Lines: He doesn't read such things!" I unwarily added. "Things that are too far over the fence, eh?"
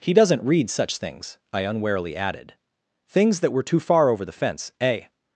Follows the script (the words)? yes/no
no